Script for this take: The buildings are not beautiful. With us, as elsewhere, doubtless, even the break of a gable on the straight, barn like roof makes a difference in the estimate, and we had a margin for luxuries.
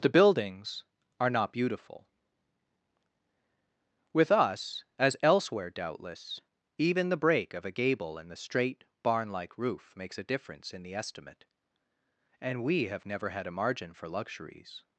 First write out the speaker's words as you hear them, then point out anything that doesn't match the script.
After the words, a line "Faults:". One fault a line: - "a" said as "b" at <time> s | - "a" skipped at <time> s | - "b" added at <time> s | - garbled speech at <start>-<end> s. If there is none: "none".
The buildings are not beautiful. With us, as elsewhere, doubtless, even the break of a gable in the straight, barn like roof makes a difference in the estimate, and we have never had a margin for luxuries.
Faults:
- "on" said as "in" at 8.2 s
- "have never" added at 12.9 s